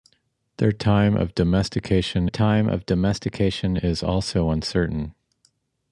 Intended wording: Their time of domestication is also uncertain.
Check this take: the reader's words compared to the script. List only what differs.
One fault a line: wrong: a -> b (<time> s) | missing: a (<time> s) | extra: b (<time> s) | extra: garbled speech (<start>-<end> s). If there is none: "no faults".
extra: time of domestication (2.3 s)